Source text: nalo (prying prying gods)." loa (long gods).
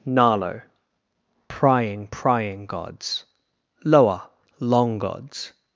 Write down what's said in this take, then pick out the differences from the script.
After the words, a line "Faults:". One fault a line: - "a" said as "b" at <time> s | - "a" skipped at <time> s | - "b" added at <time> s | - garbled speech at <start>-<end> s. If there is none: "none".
nalo (prying prying gods)." loa (long gods).
Faults:
none